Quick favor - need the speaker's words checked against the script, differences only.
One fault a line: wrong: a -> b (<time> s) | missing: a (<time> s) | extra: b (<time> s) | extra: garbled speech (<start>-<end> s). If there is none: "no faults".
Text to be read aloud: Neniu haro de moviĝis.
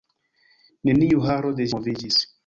no faults